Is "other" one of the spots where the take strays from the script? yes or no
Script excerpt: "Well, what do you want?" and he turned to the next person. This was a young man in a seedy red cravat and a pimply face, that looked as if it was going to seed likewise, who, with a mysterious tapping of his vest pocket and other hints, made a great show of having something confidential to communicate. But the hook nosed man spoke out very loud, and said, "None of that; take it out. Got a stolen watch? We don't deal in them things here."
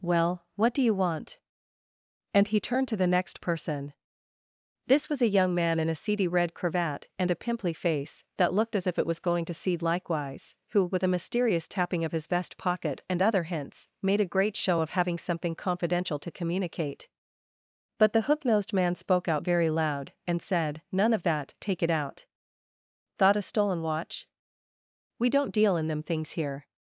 no